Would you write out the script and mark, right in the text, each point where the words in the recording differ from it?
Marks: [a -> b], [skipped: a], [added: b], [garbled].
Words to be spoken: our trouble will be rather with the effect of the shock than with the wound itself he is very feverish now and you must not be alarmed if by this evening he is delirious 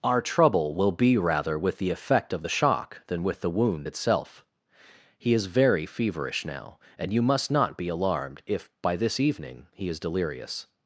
our trouble will be rather with the effect of the shock than with the wound itself he is very feverish now and you must not be alarmed if by this evening he is delirious